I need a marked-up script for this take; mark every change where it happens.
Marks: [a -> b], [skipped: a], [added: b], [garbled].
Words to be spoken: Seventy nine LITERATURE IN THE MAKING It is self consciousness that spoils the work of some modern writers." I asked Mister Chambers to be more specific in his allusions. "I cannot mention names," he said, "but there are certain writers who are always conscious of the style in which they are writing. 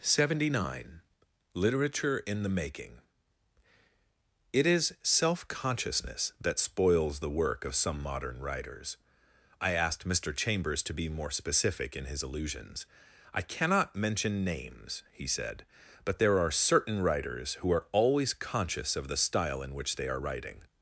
Seventy nine LITERATURE IN THE MAKING It is self consciousness that spoils the work of some modern writers." I asked Mister Chambers to be more specific in his allusions. "I cannot mention names," he said, "but there are certain writers who are always conscious of the style in which they are writing.